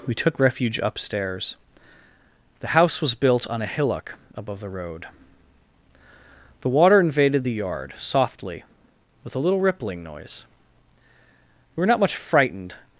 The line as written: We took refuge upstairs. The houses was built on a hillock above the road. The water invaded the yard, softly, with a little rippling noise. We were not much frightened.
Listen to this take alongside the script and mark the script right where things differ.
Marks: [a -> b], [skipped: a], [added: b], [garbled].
We took refuge upstairs. The [houses -> house] was built on a hillock above the road. The water invaded the yard, softly, with a little rippling noise. We were not much frightened.